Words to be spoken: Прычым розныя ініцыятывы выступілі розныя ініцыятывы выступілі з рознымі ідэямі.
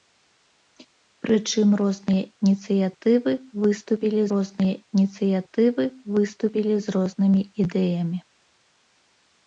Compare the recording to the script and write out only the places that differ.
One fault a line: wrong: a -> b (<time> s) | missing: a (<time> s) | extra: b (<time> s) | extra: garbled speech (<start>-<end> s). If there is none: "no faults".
no faults